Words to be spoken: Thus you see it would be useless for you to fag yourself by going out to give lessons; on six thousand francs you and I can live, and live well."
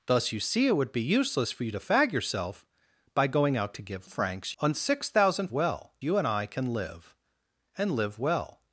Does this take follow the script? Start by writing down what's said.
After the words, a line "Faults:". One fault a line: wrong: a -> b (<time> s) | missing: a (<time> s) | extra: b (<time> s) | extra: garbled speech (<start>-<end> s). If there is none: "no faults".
Thus you see it would be useless for you to fag yourself by going out to give francs; on six thousand well you and I can live, and live well."
Faults:
wrong: lessons -> francs (4.0 s)
wrong: francs -> well (5.5 s)